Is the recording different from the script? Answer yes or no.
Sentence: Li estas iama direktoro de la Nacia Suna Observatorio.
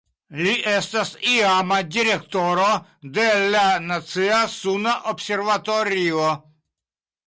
no